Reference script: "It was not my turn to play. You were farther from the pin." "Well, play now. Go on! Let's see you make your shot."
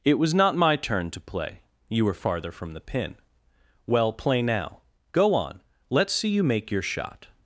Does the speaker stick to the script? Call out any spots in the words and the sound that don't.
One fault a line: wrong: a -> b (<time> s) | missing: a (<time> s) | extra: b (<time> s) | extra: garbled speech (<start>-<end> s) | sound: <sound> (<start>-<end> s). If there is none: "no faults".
no faults